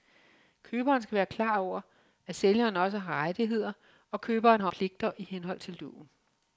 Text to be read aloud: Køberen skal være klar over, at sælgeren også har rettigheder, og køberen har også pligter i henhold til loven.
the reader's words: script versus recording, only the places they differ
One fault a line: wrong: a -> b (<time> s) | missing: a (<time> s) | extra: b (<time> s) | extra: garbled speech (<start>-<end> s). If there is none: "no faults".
missing: også (4.7 s)